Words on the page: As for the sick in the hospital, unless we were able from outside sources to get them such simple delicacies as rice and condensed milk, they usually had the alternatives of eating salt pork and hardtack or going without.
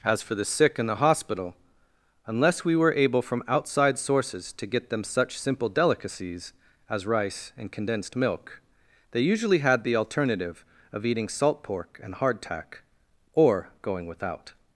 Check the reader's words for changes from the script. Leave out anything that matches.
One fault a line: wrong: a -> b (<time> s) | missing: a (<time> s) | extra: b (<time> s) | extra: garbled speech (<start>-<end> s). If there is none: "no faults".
wrong: alternatives -> alternative (9.9 s)